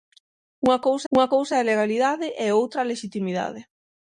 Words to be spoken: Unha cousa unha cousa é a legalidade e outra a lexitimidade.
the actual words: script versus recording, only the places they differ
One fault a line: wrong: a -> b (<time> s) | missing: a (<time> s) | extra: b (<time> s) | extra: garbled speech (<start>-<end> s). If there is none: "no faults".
no faults